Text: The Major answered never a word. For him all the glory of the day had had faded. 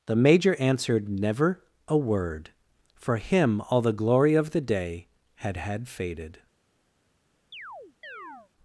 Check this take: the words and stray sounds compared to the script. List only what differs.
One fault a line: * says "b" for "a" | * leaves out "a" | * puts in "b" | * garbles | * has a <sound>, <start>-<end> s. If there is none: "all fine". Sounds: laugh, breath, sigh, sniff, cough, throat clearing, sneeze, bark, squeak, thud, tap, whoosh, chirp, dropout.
* has a chirp, 7.5-8.5 s